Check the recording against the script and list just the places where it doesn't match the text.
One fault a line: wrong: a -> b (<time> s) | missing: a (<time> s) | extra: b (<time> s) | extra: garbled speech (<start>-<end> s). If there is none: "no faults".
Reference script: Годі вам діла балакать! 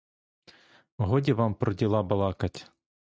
extra: про (1.5 s)